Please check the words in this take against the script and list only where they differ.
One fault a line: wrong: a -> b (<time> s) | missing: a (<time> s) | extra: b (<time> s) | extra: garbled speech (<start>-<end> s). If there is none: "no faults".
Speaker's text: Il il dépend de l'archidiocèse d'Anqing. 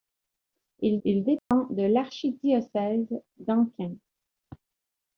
no faults